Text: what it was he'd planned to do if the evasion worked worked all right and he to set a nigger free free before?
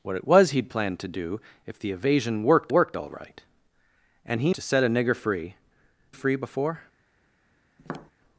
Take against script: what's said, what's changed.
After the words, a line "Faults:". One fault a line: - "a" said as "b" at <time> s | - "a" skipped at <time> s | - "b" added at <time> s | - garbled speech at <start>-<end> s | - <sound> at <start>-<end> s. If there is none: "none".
what it was he'd planned to do if the evasion worked worked all right and he to set a nigger free free before?
Faults:
- tap at 7.8-8.1 s